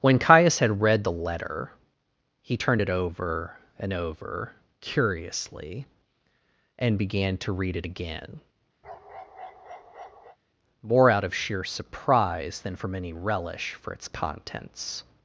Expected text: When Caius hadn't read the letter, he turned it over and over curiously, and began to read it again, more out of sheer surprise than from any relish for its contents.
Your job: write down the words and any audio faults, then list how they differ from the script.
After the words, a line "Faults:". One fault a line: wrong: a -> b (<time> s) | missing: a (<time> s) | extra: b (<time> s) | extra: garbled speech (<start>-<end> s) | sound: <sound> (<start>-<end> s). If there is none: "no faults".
When Caius had read the letter, he turned it over and over curiously, and began to read it again, more out of sheer surprise than from any relish for its contents.
Faults:
wrong: hadn't -> had (0.6 s)
sound: bark (8.8-10.4 s)